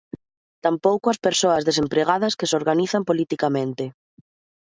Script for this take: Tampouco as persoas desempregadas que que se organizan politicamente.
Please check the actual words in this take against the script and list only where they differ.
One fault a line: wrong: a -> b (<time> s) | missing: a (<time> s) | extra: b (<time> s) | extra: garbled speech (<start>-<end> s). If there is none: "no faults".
missing: que (2.5 s)